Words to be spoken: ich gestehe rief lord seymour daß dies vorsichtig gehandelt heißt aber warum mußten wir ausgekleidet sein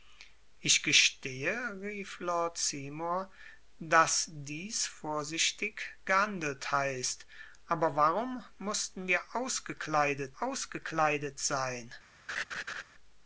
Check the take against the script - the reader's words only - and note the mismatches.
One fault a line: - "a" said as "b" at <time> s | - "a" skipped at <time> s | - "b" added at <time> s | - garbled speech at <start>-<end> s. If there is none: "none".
- "ausgekleidet" added at 10.4 s